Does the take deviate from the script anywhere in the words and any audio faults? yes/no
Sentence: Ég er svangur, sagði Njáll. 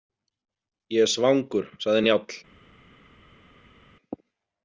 no